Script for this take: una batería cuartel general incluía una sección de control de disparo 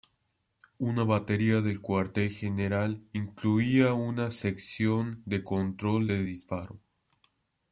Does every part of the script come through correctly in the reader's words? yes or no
no